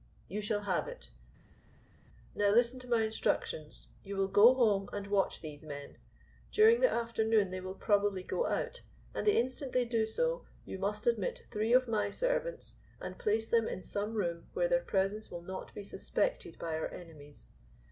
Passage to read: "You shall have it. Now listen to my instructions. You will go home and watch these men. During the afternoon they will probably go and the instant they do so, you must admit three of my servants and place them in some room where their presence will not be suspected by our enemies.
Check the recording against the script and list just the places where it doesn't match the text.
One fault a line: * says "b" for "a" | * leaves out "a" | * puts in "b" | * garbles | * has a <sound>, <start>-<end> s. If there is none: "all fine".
* puts in "out"